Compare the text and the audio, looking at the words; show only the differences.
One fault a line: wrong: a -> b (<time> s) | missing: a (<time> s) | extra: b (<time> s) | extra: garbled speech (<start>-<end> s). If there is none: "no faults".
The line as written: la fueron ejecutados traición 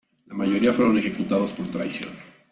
extra: mayoría (0.3 s)
extra: por (1.5 s)